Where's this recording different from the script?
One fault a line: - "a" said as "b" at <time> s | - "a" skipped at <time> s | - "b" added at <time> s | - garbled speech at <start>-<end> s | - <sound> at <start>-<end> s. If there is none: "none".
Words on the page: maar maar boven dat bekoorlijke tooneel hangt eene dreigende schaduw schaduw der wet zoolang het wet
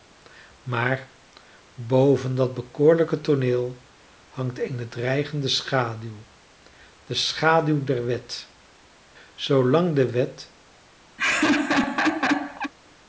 - "maar" skipped at 1.1 s
- "de" added at 7.0 s
- "het" said as "de" at 10.0 s
- laugh at 11.2-12.7 s